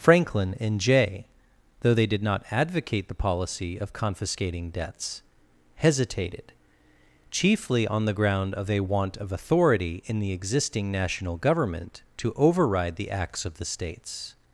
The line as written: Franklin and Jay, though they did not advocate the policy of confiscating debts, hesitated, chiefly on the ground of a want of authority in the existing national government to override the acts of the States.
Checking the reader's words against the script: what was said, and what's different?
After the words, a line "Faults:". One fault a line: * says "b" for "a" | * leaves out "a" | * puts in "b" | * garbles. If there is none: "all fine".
Franklin and Jay, though they did not advocate the policy of confiscating debts, hesitated, chiefly on the ground of a want of authority in the existing national government to override the acts of the States.
Faults:
all fine